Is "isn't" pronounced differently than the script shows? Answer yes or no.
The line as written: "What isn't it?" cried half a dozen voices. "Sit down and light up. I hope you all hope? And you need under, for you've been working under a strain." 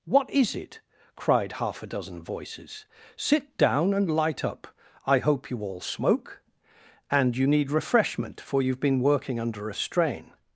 yes